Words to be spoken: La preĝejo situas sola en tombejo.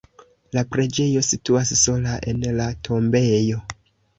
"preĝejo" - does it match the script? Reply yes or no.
yes